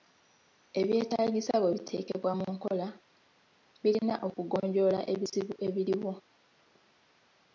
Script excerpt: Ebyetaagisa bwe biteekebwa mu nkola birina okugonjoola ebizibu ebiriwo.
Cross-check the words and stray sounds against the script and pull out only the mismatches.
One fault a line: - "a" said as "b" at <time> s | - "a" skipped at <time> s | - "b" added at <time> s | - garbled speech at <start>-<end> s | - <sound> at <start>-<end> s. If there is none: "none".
none